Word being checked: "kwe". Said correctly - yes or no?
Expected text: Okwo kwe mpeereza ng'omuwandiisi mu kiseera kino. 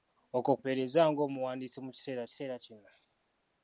no